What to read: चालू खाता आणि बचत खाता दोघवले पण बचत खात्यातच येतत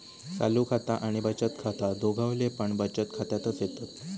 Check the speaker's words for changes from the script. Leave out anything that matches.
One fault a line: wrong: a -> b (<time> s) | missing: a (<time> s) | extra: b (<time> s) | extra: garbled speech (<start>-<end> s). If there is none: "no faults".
no faults